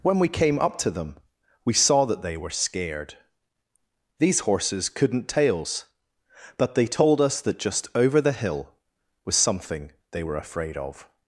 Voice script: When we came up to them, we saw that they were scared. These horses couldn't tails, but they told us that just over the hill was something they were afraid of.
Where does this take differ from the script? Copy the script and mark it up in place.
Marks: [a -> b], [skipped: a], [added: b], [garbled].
When we came up to them, we saw that they were scared. These horses couldn't tails, but they told us that just over the hill was something they were afraid of.